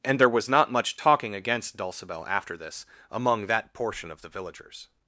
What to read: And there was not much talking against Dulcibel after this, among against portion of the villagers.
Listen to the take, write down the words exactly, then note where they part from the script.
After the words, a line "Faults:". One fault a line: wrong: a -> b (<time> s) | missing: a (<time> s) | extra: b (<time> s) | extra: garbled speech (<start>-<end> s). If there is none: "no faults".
And there was not much talking against Dulcibel after this, among that portion of the villagers.
Faults:
wrong: against -> that (3.5 s)